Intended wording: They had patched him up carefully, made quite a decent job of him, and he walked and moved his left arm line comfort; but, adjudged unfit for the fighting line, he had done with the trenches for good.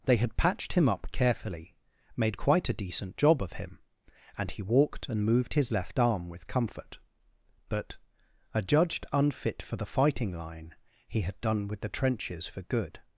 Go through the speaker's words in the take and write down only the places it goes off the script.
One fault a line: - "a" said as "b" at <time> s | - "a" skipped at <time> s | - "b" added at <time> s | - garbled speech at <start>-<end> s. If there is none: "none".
- "line" said as "with" at 6.3 s